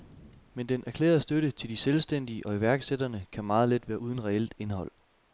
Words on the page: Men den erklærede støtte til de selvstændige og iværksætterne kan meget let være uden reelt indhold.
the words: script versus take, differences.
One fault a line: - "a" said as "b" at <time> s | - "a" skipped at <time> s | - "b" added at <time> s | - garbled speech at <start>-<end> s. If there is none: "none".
none